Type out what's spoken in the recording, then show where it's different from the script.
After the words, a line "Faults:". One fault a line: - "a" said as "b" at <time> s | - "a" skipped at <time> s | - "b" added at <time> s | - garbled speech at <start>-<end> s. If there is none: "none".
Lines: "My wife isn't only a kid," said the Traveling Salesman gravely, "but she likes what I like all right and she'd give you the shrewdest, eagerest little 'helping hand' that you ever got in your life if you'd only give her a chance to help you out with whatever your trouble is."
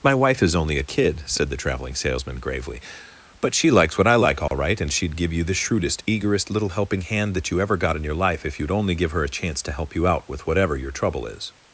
"My wife is only a kid," said the Traveling Salesman gravely, "but she likes what I like all right and she'd give you the shrewdest, eagerest little 'helping hand' that you ever got in your life if you'd only give her a chance to help you out with whatever your trouble is."
Faults:
- "isn't" said as "is" at 0.4 s